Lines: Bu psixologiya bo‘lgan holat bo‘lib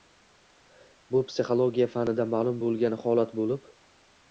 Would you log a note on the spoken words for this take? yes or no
yes